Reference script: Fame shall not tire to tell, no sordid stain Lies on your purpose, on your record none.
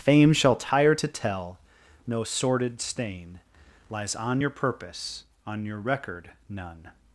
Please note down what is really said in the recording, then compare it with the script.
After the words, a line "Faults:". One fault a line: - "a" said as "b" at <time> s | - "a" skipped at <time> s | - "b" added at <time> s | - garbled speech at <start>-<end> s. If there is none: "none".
Fame shall tire to tell, no sordid stain Lies on your purpose, on your record none.
Faults:
- "not" skipped at 0.6 s